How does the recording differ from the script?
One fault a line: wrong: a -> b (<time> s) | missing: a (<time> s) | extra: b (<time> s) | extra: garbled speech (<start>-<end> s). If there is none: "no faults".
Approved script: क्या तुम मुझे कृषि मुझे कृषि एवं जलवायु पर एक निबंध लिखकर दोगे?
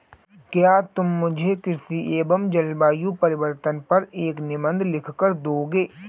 missing: मुझे कृषि (2.0 s)
extra: परिवर्तन (3.2 s)